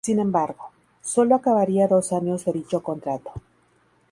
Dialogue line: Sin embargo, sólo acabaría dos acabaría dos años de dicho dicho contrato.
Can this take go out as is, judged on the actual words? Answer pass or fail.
fail